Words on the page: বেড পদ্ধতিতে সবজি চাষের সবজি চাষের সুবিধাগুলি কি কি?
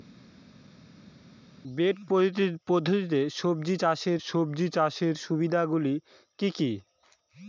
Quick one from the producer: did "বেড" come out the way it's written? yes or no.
yes